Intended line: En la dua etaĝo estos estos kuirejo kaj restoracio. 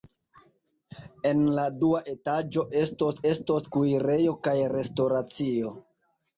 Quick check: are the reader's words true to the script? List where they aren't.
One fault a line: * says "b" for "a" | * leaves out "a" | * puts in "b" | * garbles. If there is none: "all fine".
all fine